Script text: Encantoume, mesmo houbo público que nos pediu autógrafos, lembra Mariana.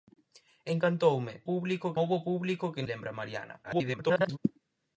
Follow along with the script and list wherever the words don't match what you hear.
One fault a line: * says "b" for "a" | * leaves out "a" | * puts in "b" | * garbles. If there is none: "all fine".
* says "público" for "mesmo"
* leaves out "nos pediu autógrafos"
* garbles